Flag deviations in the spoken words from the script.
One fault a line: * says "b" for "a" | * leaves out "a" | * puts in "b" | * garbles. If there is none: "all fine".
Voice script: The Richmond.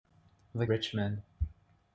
all fine